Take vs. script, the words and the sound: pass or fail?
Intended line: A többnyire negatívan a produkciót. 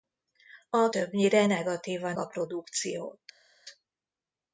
pass